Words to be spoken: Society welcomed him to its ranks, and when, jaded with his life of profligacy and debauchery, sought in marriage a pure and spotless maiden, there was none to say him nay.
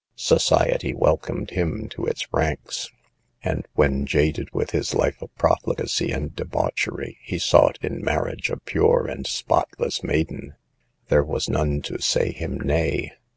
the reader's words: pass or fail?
fail